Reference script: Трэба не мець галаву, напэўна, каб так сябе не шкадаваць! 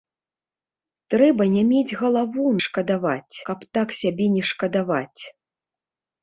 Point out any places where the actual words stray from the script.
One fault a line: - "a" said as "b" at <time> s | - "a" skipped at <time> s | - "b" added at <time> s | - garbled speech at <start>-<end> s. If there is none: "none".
- "напэўна" said as "шкадаваць" at 2.7 s